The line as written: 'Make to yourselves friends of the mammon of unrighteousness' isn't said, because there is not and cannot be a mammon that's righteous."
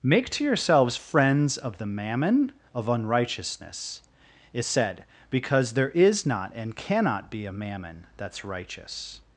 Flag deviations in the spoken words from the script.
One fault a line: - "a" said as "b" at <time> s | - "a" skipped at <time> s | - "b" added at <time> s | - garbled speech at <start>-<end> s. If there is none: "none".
- "isn't" said as "is" at 4.5 s